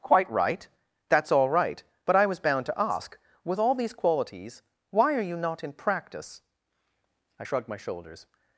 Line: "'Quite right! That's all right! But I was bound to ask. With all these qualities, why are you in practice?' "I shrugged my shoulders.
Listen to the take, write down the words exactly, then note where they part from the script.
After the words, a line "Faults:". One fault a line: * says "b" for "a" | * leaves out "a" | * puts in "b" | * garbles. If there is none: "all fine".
"'Quite right! That's all right! But I was bound to ask. With all these qualities, why are you not in practice?' "I shrugged my shoulders.
Faults:
* puts in "not"